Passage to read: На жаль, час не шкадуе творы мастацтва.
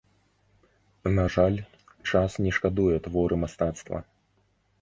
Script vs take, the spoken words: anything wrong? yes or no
no